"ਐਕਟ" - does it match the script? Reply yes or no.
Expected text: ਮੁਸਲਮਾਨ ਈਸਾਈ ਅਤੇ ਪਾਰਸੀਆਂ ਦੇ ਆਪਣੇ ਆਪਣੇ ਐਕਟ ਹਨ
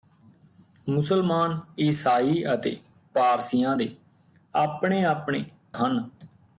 no